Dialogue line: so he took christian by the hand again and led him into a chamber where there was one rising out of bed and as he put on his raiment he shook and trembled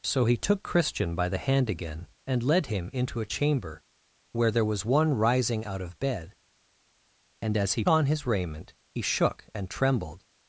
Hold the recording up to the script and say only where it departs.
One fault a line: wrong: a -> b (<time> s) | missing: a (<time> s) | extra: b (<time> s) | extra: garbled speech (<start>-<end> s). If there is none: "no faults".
missing: put (7.8 s)